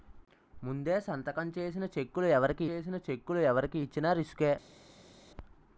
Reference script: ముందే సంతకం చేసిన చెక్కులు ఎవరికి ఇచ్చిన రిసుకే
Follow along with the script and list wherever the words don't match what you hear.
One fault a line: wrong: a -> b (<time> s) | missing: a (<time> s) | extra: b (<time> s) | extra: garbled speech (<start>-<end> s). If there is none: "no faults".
extra: చేసిన చెక్కులు ఎవరికి (2.7 s)